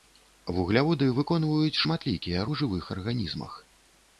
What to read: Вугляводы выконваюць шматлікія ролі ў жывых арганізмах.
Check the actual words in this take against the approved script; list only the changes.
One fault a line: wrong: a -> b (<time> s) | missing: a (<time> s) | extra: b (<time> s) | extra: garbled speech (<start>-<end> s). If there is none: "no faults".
missing: ролі (2.5 s)